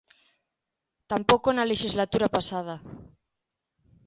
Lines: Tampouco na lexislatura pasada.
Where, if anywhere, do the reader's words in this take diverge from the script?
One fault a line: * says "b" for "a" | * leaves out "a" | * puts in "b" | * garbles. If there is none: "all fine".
all fine